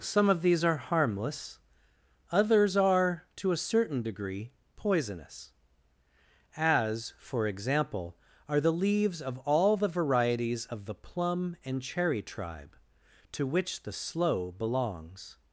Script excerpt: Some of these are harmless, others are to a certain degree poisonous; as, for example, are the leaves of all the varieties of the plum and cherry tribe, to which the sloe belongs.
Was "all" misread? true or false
false